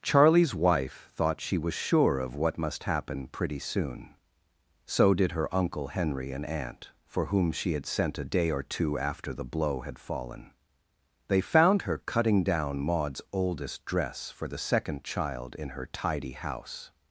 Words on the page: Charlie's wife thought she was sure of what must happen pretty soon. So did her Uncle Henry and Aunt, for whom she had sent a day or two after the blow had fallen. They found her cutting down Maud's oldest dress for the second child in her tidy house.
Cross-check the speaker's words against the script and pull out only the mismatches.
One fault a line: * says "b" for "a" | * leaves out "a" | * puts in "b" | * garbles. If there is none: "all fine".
all fine